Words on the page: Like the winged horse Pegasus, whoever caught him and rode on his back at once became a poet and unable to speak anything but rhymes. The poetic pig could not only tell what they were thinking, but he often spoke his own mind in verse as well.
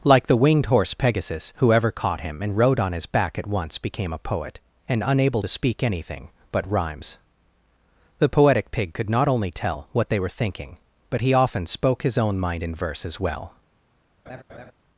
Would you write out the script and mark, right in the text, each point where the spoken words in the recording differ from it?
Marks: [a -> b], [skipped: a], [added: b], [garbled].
Like the winged horse Pegasus, whoever caught him and rode on his back at once became a poet and unable to speak anything but rhymes. The poetic pig could not only tell what they were thinking, but he often spoke his own mind in verse as well.